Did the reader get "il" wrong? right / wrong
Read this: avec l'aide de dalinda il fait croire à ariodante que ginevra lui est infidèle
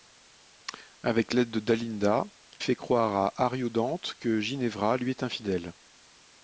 wrong